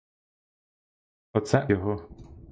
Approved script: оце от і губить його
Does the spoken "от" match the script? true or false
false